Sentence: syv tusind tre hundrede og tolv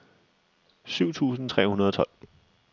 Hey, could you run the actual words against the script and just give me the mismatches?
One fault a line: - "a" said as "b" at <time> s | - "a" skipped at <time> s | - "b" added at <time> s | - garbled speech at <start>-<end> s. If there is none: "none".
none